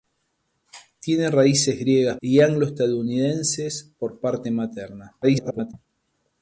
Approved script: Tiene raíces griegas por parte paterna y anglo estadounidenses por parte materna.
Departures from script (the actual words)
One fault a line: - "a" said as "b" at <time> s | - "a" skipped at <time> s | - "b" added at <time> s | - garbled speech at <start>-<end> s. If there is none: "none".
- "por parte paterna" skipped at 2.2 s
- garbled speech at 5.2-5.7 s